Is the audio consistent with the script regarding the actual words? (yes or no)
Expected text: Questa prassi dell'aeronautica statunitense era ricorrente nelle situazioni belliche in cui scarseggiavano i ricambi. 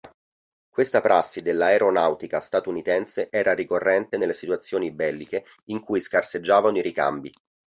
yes